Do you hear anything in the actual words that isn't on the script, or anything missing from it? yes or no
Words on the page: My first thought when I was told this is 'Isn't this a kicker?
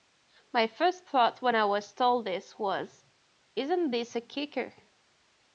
yes